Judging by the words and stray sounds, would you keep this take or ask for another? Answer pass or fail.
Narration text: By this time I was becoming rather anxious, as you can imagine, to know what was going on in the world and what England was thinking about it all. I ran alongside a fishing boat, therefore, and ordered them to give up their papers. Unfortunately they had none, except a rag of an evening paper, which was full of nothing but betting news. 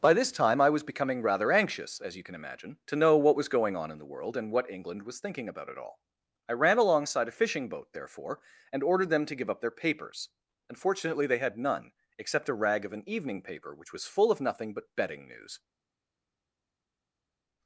pass